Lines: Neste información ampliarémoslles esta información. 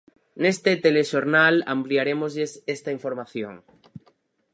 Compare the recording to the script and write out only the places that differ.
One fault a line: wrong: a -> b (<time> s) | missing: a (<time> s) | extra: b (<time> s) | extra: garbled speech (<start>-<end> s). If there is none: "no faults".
wrong: información -> telexornal (0.8 s)